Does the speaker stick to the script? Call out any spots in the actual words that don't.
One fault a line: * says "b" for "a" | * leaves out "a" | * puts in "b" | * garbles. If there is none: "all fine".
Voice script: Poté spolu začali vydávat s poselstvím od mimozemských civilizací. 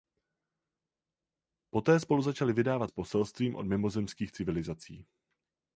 all fine